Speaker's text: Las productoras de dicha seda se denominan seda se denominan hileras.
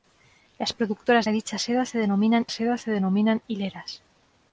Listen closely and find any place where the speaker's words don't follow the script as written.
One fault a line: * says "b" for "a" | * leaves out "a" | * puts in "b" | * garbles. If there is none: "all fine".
all fine